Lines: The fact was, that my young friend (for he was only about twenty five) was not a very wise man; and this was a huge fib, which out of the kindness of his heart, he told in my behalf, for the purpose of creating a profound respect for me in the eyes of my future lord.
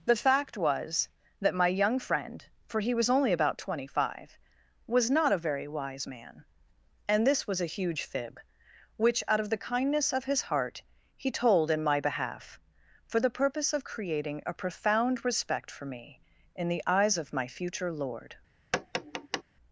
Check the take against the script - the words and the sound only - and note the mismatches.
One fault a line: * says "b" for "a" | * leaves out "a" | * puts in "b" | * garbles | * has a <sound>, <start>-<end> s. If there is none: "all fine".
* has a tap, 18.7-19.4 s